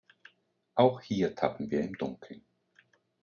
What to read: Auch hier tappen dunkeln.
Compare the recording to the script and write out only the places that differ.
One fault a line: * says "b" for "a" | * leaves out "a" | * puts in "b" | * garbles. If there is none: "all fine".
* puts in "wir im"